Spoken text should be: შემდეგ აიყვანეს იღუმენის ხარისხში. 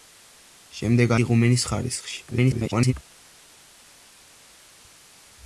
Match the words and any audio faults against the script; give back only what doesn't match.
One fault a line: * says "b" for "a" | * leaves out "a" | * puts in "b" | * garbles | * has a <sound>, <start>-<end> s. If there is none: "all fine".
* leaves out "აიყვანეს"
* garbles